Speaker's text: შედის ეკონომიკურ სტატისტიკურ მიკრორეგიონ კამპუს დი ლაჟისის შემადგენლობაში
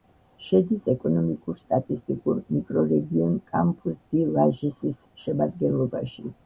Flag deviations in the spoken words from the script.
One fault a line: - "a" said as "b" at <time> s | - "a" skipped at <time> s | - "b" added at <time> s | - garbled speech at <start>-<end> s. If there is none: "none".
none